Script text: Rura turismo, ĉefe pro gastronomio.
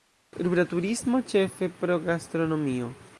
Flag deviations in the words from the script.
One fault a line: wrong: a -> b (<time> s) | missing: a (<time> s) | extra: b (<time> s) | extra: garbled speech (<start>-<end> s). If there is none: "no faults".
no faults